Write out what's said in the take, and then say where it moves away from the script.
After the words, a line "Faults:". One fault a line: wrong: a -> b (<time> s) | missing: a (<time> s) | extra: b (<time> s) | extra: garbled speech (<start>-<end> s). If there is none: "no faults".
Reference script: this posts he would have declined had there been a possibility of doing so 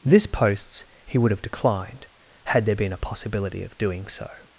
this posts he would have declined had there been a possibility of doing so
Faults:
no faults